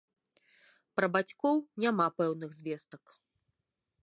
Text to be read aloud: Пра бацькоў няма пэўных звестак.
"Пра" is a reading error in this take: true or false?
false